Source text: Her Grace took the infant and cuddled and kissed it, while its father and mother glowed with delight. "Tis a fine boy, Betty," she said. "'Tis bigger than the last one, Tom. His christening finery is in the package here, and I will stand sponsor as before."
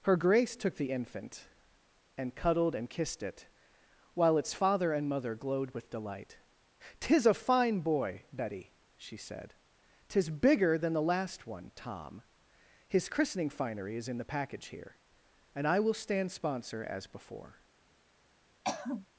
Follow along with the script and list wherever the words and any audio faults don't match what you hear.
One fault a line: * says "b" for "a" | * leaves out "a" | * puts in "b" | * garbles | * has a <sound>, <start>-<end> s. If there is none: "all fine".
* has a throat clearing, 18.6-19.1 s